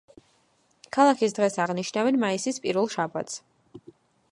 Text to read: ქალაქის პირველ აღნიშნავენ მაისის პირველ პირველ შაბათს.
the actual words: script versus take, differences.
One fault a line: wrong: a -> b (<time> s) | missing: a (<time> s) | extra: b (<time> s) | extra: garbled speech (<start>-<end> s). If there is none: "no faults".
wrong: პირველ -> დღეს (1.4 s)
missing: პირველ (2.9 s)